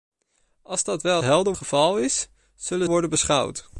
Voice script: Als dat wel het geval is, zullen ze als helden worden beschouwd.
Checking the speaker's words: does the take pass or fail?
fail